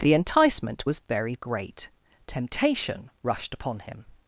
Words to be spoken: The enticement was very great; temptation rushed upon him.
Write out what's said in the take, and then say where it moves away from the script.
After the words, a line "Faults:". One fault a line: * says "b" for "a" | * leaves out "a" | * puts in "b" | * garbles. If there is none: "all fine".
The enticement was very great; temptation rushed upon him.
Faults:
all fine